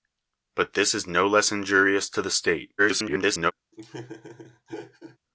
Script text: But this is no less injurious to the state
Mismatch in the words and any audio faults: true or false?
true